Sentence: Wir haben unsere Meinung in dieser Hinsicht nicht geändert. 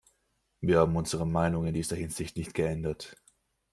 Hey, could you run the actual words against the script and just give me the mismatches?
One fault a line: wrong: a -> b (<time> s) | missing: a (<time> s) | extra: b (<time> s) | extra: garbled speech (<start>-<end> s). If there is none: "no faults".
no faults